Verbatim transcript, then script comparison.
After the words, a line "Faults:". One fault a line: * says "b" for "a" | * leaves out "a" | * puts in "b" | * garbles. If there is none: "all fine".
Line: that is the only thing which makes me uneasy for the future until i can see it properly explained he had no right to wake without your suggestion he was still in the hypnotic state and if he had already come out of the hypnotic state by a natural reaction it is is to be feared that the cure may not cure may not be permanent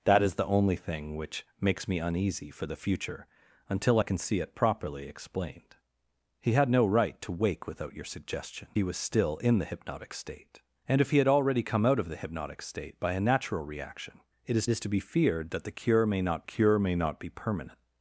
that is the only thing which makes me uneasy for the future until i can see it properly explained he had no right to wake without your suggestion he was still in the hypnotic state and if he had already come out of the hypnotic state by a natural reaction it is is to be feared that the cure may not cure may not be permanent
Faults:
all fine